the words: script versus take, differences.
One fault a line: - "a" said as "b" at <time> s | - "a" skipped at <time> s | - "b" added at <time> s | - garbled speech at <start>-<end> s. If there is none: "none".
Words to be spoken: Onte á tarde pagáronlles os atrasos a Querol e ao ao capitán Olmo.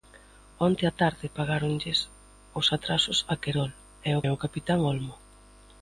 none